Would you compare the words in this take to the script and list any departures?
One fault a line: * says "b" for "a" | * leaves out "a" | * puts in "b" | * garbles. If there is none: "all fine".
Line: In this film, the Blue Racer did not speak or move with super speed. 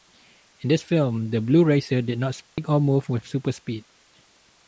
all fine